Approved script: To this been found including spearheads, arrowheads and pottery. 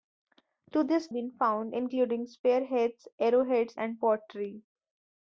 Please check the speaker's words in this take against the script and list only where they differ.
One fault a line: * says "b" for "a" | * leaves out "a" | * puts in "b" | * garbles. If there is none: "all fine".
all fine